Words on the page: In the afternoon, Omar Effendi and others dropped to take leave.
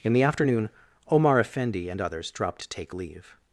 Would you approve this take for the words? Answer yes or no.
yes